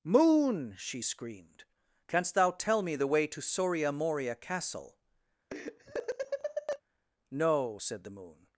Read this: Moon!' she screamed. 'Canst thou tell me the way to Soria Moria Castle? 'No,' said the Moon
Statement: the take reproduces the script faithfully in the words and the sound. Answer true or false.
false